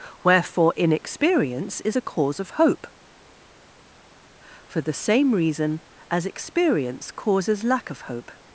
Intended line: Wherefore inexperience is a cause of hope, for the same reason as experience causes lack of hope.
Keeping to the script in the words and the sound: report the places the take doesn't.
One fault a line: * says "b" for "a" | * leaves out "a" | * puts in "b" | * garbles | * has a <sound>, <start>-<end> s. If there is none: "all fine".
all fine